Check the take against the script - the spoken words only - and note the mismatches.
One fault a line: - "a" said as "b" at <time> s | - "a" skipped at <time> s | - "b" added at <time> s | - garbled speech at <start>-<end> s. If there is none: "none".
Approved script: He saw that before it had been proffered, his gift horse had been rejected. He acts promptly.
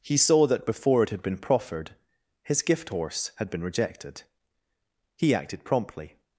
- "acts" said as "acted" at 5.3 s